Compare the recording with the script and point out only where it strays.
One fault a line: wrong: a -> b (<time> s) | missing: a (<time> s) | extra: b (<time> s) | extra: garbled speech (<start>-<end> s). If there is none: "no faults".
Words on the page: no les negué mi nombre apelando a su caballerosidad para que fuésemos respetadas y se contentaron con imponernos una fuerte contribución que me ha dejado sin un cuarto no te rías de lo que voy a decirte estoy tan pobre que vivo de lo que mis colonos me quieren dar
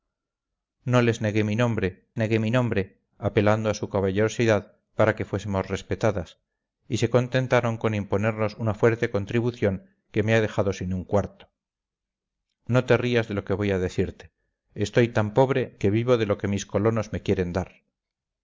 extra: negué mi nombre (2.2 s)